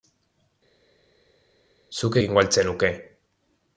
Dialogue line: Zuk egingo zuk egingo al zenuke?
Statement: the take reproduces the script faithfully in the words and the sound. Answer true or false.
false